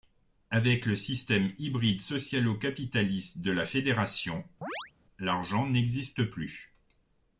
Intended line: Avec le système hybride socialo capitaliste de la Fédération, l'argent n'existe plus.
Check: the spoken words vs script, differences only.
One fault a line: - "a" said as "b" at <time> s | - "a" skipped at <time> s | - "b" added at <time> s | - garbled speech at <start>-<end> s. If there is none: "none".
none